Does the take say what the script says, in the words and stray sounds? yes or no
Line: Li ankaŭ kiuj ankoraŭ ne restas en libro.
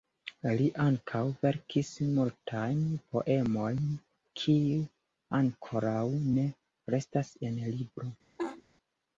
no